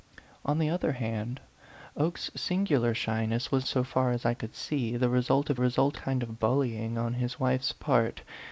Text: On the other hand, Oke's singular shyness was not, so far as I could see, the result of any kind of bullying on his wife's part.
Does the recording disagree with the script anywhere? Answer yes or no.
yes